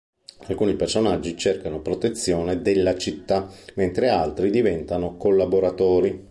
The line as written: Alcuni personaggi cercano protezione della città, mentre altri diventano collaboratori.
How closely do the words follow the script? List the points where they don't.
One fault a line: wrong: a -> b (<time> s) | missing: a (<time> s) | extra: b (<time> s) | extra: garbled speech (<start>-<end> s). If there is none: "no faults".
no faults